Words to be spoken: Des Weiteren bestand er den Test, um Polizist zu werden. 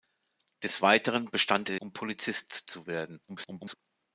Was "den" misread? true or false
true